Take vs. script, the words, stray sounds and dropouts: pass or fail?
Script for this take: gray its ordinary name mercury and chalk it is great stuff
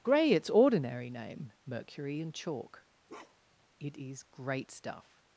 fail